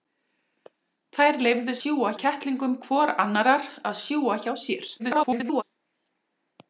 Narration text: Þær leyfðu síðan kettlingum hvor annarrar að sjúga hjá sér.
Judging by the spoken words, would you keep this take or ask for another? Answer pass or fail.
fail